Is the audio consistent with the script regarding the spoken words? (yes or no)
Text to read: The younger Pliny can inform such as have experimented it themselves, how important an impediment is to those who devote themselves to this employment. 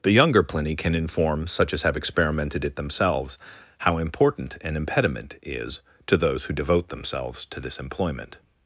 yes